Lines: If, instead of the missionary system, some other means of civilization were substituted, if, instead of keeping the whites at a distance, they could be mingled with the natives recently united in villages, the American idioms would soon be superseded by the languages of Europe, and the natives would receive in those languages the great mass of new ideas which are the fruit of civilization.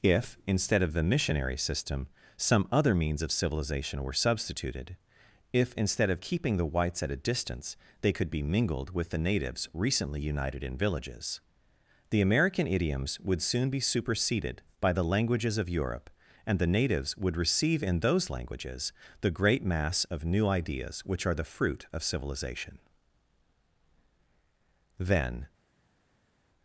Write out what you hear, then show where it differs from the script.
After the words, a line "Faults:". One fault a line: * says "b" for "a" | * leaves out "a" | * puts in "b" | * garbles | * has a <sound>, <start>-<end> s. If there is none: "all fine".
If, instead of the missionary system, some other means of civilization were substituted, if, instead of keeping the whites at a distance, they could be mingled with the natives recently united in villages, the American idioms would soon be superseded by the languages of Europe, and the natives would receive in those languages the great mass of new ideas which are the fruit of civilization. Then
Faults:
* puts in "Then"